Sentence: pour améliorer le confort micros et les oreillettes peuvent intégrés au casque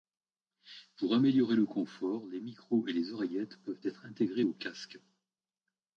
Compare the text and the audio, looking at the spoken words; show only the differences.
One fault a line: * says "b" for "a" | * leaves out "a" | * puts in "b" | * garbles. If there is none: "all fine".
* puts in "les"
* puts in "être"